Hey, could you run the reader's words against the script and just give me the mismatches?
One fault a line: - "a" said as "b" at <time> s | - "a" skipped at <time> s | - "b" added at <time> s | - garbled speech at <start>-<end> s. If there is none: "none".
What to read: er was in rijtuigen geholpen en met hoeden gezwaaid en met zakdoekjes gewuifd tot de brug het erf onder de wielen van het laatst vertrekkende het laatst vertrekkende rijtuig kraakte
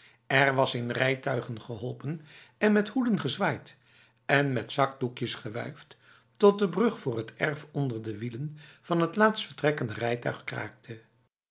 - "voor" added at 7.0 s
- "het laatst vertrekkende" skipped at 9.9 s